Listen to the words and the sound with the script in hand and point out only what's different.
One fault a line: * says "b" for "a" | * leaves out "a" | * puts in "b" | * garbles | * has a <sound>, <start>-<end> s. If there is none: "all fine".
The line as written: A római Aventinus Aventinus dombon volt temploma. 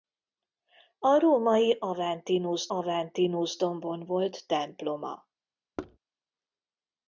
* has a thud, 5.8-6.0 s